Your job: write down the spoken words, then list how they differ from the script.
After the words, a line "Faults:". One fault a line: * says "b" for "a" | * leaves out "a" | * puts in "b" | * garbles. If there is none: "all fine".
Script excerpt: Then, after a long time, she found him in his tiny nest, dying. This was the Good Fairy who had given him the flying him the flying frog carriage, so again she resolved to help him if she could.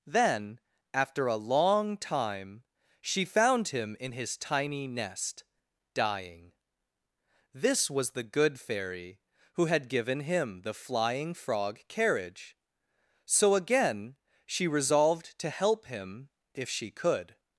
Then, after a long time, she found him in his tiny nest, dying. This was the Good Fairy who had given him the flying frog carriage, so again she resolved to help him if she could.
Faults:
* leaves out "him the flying"